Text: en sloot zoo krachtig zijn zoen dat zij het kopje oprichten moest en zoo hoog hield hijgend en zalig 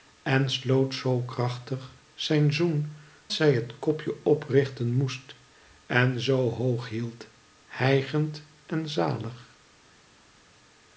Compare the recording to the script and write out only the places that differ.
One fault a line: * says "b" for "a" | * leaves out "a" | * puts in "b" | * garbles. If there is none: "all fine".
* leaves out "dat"